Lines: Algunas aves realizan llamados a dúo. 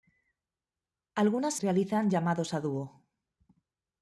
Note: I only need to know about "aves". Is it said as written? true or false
false